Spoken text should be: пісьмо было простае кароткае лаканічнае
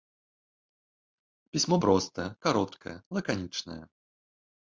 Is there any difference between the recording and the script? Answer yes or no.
yes